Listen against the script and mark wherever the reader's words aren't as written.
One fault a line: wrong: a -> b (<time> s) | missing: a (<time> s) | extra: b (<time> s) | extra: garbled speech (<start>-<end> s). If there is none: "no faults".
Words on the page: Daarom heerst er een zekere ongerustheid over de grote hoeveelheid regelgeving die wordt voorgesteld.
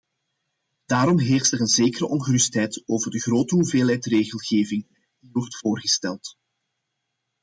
no faults